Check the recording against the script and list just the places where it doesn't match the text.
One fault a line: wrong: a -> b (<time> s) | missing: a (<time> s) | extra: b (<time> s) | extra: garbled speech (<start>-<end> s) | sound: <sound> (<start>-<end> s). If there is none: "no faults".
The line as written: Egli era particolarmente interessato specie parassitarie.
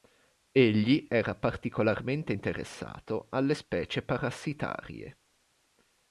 extra: alle (3.3 s)